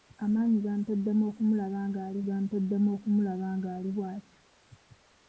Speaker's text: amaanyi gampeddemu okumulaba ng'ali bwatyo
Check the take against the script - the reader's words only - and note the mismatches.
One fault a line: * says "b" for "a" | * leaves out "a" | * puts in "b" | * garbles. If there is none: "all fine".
* puts in "gampeddemu okumulaba ng'ali"